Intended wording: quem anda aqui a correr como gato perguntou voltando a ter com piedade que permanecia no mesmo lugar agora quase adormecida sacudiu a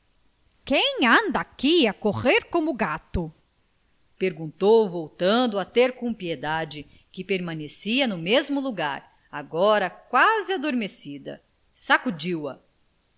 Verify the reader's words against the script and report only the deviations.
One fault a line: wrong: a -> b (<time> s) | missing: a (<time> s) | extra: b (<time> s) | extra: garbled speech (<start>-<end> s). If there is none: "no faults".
no faults